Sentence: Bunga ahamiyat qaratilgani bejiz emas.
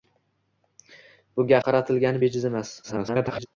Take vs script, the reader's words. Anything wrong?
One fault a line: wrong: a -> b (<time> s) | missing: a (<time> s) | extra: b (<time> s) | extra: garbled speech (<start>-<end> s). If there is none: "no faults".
missing: ahamiyat (1.6 s)
extra: garbled speech (2.8-3.5 s)